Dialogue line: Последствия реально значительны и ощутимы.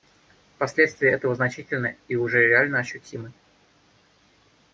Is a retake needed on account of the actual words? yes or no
yes